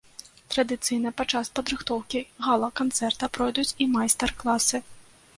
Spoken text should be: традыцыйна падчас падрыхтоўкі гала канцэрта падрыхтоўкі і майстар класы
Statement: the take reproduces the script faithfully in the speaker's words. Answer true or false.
false